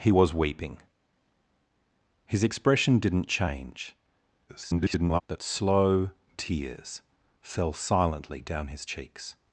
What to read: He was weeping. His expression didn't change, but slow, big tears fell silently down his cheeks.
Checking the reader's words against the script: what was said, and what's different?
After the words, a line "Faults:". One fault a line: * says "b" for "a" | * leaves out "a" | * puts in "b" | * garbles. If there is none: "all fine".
He was weeping. His expression didn't change, [garbled] but slow, tears fell silently down his cheeks.
Faults:
* garbles
* leaves out "big"